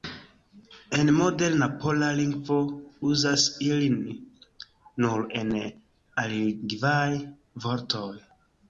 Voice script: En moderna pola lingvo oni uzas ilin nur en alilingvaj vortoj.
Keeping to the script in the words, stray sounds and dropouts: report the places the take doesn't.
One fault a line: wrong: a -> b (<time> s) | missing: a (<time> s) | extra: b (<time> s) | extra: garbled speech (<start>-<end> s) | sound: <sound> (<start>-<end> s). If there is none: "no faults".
missing: oni (2.6 s)